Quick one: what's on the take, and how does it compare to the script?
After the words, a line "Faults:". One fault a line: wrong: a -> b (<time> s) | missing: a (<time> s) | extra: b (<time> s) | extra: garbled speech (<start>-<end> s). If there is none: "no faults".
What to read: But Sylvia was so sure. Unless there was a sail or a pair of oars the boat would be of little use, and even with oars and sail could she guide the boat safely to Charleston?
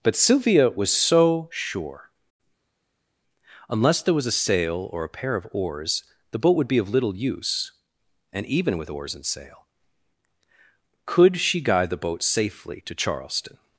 But Sylvia was so sure. Unless there was a sail or a pair of oars the boat would be of little use, and even with oars and sail could she guide the boat safely to Charleston?
Faults:
no faults